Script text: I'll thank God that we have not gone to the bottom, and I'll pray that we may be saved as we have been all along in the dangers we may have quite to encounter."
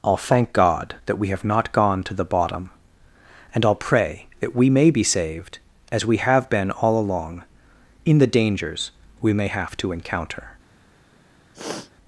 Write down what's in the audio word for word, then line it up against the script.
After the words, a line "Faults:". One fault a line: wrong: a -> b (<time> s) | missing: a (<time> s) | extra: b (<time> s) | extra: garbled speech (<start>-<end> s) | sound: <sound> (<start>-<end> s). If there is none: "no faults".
I'll thank God that we have not gone to the bottom, and I'll pray that we may be saved as we have been all along in the dangers we may have to encounter."
Faults:
missing: quite (9.8 s)
sound: sniff (11.5-11.9 s)